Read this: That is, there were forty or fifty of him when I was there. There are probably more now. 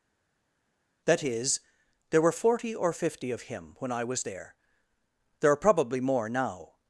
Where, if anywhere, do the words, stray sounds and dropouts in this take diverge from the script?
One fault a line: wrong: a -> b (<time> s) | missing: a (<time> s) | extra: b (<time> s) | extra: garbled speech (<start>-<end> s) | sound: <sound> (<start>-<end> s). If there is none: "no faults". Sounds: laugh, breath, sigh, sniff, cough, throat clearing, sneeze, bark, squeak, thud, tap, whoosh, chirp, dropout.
no faults